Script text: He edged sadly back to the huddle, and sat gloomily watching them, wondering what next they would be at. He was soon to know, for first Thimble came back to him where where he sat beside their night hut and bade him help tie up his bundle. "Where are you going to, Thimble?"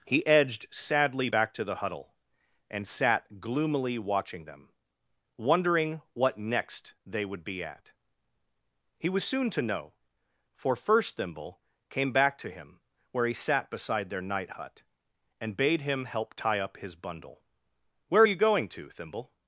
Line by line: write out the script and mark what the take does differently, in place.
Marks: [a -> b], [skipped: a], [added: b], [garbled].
He edged sadly back to the huddle, and sat gloomily watching them, wondering what next they would be at. He was soon to know, for first Thimble came back to him where [skipped: where] he sat beside their night hut and bade him help tie up his bundle. "Where are you going to, Thimble?"